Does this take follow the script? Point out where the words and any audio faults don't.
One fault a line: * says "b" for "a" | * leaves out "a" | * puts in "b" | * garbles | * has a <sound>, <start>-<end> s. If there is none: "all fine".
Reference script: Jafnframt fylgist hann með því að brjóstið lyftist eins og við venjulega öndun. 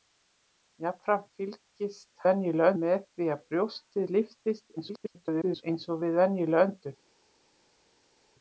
* says "venjulega" for "hann"
* garbles